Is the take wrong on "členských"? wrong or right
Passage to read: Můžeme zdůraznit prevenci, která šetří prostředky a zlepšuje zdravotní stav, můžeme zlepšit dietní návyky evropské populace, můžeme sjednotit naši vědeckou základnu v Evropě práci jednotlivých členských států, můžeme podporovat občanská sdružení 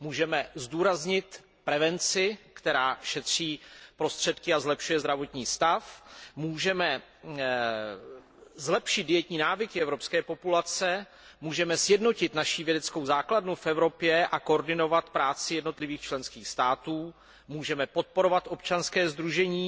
right